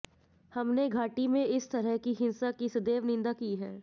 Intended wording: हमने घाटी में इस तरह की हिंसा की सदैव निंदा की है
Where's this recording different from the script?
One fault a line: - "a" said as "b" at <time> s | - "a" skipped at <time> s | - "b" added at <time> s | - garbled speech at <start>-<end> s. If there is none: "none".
none